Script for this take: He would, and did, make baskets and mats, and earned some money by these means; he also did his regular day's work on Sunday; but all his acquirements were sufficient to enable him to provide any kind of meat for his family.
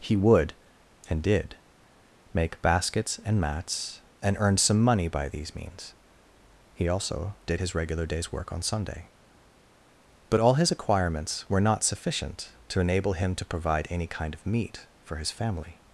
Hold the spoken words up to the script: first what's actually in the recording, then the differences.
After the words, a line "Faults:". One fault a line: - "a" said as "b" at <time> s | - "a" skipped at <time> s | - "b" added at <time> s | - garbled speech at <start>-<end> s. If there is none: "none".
He would, and did, make baskets and mats, and earned some money by these means; he also did his regular day's work on Sunday; but all his acquirements were not sufficient to enable him to provide any kind of meat for his family.
Faults:
- "not" added at 11.6 s